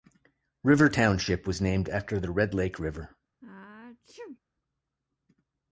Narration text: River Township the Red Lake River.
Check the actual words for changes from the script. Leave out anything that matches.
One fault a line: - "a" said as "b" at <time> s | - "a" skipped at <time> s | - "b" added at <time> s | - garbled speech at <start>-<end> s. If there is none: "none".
- "was named after" added at 1.4 s